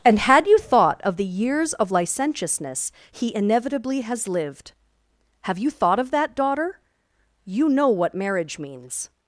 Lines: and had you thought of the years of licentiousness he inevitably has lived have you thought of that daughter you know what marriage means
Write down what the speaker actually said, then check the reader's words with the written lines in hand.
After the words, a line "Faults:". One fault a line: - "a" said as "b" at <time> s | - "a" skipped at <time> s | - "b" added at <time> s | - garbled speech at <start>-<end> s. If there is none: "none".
and had you thought of the years of licentiousness he inevitably has lived have you thought of that daughter you know what marriage means
Faults:
none